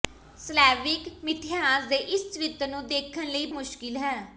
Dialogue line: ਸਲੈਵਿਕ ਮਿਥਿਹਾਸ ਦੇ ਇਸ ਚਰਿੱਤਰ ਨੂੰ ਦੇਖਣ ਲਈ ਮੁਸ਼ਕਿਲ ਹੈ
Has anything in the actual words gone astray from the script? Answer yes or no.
no